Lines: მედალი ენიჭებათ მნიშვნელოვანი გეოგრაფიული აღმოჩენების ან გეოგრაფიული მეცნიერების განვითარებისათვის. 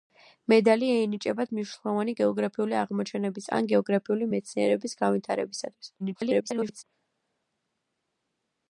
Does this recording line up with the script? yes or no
no